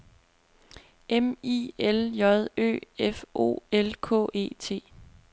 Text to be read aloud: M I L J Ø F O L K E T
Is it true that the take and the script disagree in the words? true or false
false